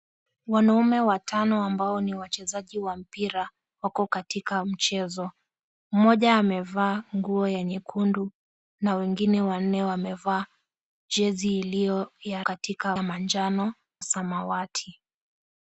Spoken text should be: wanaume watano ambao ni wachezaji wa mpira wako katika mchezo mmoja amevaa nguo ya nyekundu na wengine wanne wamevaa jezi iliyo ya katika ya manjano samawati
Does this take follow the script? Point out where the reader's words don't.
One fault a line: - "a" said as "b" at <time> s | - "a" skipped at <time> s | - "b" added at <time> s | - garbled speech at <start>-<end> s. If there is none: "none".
none